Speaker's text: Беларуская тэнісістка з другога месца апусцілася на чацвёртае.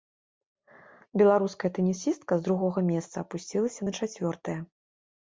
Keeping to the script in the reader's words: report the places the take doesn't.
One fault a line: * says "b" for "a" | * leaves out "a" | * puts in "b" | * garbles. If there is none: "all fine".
all fine